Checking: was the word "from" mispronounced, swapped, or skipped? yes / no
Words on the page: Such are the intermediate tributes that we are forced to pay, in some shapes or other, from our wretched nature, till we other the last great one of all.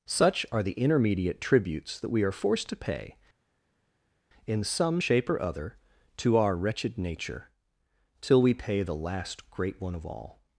yes